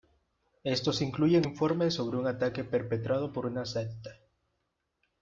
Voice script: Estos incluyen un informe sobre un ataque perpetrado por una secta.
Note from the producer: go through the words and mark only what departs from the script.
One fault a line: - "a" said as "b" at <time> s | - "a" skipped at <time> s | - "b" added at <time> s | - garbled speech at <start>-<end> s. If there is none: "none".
- "un" skipped at 1.5 s